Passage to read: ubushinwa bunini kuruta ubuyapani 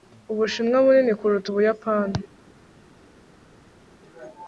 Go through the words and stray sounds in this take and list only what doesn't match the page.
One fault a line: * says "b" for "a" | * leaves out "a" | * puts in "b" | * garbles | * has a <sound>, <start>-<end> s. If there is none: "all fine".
all fine